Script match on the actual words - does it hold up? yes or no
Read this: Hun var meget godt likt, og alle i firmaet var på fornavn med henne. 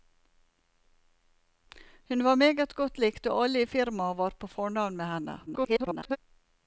no